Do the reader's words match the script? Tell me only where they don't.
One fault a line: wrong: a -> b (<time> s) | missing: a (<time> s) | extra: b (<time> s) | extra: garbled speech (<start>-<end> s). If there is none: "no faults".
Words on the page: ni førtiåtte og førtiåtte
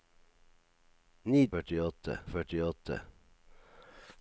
no faults